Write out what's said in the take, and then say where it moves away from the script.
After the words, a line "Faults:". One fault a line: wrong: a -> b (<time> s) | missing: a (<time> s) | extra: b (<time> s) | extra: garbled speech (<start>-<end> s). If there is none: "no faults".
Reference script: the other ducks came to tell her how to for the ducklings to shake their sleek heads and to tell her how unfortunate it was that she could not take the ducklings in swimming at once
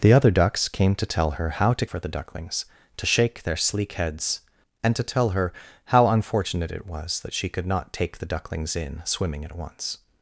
the other ducks came to tell her how to for the ducklings to shake their sleek heads and to tell her how unfortunate it was that she could not take the ducklings in swimming at once
Faults:
no faults